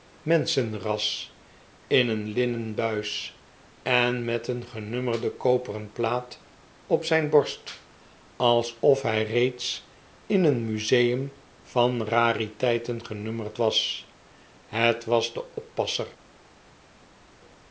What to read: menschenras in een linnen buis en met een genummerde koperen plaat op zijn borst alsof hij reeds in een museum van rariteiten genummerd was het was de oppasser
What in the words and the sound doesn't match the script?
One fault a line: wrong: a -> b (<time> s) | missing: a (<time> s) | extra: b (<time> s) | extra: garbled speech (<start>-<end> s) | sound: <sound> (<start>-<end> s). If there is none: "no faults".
no faults